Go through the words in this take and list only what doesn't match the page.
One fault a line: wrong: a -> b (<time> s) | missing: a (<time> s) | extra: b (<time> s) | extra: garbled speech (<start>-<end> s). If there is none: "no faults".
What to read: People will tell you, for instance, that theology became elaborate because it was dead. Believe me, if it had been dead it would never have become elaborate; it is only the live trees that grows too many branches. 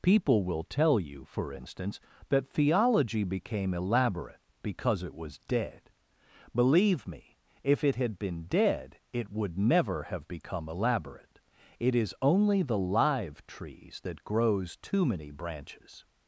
no faults